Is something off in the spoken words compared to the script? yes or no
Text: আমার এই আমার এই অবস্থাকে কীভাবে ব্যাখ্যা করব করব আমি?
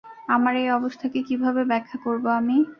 yes